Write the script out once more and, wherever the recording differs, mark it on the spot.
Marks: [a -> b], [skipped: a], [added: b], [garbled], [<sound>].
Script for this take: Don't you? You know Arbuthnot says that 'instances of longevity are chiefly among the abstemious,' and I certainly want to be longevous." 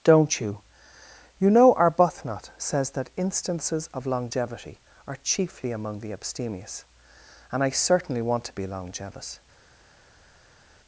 Don't you? You know Arbuthnot says that 'instances of longevity are chiefly among the abstemious,' and I certainly want to be longevous."